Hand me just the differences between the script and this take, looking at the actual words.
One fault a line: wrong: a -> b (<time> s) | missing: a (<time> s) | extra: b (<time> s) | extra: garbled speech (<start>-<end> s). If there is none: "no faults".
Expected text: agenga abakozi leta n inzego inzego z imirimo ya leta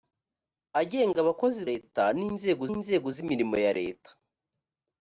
no faults